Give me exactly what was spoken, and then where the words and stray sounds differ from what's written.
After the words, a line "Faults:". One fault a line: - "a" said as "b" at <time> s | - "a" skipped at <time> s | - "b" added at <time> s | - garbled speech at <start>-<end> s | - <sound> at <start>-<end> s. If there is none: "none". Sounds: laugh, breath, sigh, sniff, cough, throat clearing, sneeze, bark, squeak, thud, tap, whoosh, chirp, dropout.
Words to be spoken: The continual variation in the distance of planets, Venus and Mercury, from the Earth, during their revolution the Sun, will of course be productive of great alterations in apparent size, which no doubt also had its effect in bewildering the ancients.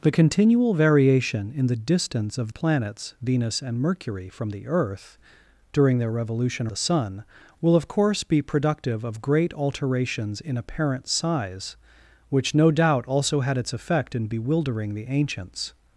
The continual variation in the distance of planets, Venus and Mercury, from the Earth, during their revolution the Sun, will of course be productive of great alterations in apparent size, which no doubt also had its effect in bewildering the ancients.
Faults:
none